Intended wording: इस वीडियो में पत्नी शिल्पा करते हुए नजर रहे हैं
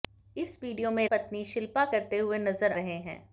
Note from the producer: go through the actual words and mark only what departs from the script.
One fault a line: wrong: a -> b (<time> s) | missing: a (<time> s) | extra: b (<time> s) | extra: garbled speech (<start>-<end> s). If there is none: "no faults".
no faults